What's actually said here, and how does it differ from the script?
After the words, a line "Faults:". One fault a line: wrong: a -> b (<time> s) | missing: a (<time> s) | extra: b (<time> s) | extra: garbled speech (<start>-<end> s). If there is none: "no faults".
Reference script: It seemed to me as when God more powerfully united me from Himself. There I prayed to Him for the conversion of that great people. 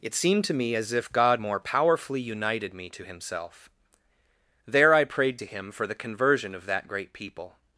It seemed to me as if God more powerfully united me to Himself. There I prayed to Him for the conversion of that great people.
Faults:
wrong: when -> if (0.9 s)
wrong: from -> to (2.9 s)